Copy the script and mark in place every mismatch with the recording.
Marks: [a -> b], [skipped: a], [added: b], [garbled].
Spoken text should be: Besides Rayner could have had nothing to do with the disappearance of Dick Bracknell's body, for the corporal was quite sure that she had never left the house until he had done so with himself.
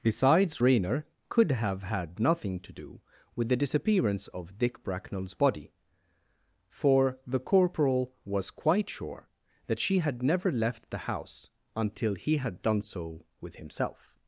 Besides Rayner could have had nothing to do with the disappearance of Dick Bracknell's body, for the corporal was quite sure that she had never left the house until he had done so with himself.